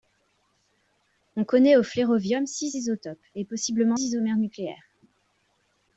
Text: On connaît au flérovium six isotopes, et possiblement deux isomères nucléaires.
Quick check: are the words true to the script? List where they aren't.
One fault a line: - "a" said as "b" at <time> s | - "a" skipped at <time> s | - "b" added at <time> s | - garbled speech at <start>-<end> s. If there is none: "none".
- "deux" skipped at 4.0 s